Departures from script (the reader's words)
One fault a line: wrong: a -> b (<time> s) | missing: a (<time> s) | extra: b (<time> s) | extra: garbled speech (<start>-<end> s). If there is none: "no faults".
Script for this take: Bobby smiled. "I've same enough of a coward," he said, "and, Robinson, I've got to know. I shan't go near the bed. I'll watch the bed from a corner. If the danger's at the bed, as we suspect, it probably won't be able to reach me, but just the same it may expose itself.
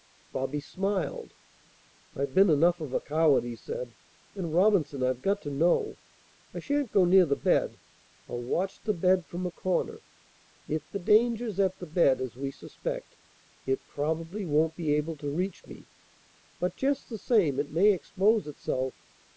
wrong: same -> been (2.3 s)